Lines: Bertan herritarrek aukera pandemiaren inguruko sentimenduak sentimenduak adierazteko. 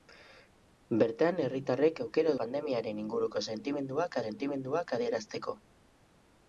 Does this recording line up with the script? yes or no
yes